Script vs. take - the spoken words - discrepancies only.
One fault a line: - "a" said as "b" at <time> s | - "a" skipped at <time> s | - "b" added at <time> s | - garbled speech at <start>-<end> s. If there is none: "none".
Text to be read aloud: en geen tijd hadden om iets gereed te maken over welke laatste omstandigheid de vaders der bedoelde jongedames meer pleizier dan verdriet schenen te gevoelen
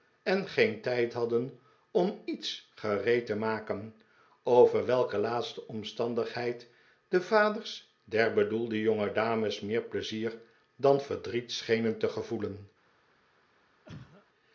none